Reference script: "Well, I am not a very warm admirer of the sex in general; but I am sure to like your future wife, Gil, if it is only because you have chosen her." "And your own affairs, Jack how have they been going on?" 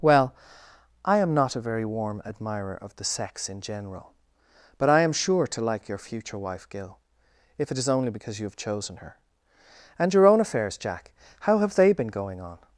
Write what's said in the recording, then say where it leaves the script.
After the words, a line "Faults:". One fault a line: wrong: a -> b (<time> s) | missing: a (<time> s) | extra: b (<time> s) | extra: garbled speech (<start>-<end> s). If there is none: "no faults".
"Well, I am not a very warm admirer of the sex in general; but I am sure to like your future wife, Gil, if it is only because you have chosen her." "And your own affairs, Jack how have they been going on?"
Faults:
no faults